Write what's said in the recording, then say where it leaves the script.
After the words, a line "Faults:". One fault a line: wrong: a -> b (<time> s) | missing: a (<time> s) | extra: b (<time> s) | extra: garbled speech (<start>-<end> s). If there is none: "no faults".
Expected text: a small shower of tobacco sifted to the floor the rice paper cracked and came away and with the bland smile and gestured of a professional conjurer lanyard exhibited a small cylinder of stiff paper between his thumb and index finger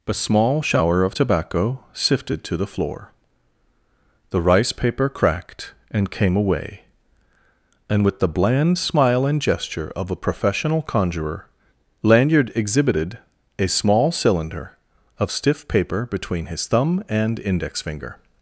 a small shower of tobacco sifted to the floor the rice paper cracked and came away and with the bland smile and gesture of a professional conjurer lanyard exhibited a small cylinder of stiff paper between his thumb and index finger
Faults:
wrong: gestured -> gesture (9.4 s)